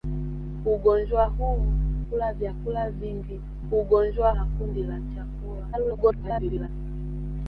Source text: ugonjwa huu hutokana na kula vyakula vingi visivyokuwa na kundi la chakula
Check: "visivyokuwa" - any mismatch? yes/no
yes